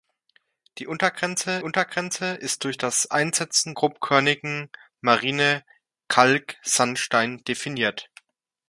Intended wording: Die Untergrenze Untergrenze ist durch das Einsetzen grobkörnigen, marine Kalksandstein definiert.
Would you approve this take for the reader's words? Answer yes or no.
yes